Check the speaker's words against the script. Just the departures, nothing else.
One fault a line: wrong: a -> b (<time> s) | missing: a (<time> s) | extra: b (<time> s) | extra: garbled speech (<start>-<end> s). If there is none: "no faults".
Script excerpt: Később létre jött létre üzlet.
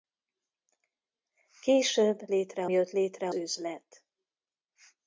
no faults